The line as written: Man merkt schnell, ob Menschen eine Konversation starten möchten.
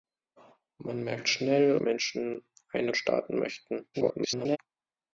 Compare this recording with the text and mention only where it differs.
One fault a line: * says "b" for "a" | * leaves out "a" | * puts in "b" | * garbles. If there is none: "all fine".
* leaves out "ob"
* leaves out "Konversation"
* garbles